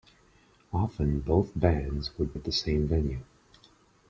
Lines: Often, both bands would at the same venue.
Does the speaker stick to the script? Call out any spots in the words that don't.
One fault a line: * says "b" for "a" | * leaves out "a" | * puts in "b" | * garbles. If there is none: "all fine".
all fine